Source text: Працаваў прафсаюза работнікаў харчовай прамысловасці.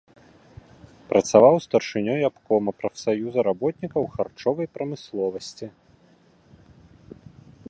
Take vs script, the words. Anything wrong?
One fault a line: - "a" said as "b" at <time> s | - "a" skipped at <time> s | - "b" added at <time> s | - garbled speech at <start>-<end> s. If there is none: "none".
- "старшынёй абкома" added at 1.6 s